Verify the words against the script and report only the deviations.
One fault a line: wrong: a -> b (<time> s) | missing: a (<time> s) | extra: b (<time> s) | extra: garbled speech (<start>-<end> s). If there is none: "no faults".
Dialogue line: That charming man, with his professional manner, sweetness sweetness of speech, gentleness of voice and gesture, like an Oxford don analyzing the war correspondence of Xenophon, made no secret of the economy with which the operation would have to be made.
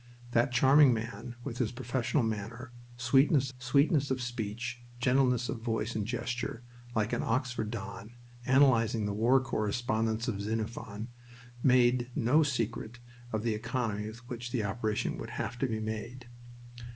no faults